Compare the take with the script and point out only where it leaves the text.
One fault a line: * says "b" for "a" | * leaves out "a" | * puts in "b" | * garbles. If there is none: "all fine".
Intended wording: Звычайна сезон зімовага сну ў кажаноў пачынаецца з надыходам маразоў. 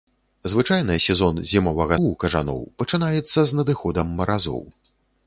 * leaves out "сну"